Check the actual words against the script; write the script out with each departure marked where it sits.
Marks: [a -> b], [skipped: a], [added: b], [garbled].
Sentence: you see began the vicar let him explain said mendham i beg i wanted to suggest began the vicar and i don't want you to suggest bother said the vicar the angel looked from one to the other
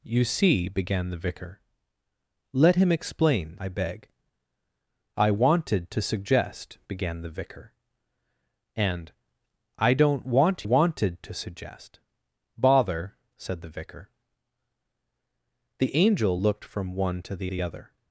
you see began the vicar let him explain [skipped: said mendham] i beg i wanted to suggest began the vicar and i don't want [you -> wanted] to suggest bother said the vicar the angel looked from one to the [added: the] other